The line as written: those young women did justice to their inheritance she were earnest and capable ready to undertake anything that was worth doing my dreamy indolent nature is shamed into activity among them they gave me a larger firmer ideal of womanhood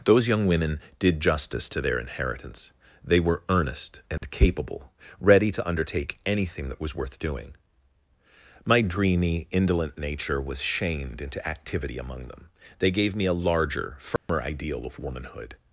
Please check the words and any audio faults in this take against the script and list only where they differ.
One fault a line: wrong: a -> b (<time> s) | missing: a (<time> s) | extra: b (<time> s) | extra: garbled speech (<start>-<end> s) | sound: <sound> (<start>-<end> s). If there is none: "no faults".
wrong: she -> they (3.0 s)
sound: dropout (4.2-4.2 s)
wrong: is -> was (10.4 s)
sound: dropout (14.2-14.3 s)